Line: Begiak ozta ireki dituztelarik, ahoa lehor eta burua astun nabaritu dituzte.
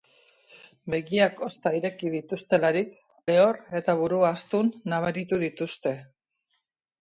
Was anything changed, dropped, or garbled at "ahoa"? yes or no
yes